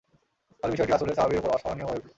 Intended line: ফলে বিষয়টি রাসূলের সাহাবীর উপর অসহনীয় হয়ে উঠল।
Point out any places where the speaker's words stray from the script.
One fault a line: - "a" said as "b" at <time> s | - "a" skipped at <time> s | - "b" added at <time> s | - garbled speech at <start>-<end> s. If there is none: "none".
none